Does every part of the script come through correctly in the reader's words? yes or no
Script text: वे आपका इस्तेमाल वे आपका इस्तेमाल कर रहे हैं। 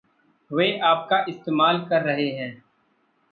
no